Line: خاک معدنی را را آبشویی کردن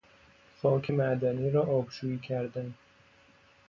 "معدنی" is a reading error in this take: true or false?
false